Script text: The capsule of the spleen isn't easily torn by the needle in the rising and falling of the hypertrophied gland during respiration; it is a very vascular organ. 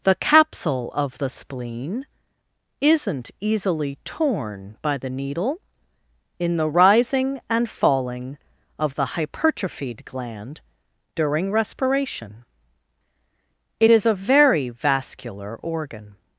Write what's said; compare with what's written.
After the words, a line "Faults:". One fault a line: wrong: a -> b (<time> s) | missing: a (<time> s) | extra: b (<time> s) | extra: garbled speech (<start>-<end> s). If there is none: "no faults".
The capsule of the spleen isn't easily torn by the needle in the rising and falling of the hypertrophied gland during respiration; it is a very vascular organ.
Faults:
no faults